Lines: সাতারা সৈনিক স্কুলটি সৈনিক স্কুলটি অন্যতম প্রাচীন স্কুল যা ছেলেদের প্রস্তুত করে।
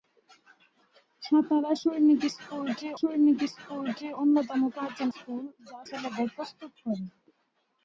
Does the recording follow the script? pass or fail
pass